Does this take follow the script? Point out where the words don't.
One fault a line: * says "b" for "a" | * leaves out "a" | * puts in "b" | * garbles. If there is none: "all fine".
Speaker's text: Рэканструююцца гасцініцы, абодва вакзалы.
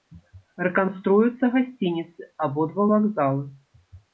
all fine